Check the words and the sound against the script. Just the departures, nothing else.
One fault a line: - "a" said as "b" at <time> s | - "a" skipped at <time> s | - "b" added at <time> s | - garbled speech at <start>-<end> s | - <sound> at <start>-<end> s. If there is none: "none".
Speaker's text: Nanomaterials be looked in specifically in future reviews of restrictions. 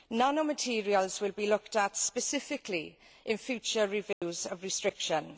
- "will" added at 1.2 s
- "in" said as "at" at 1.8 s
- dropout at 4.1-4.2 s